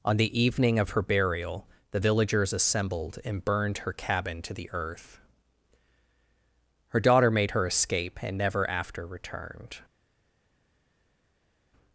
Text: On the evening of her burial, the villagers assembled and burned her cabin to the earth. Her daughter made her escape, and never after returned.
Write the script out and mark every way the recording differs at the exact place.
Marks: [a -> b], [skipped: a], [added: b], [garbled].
On the evening of her burial, the villagers assembled and burned her cabin to the earth. Her daughter made her escape, and never after returned.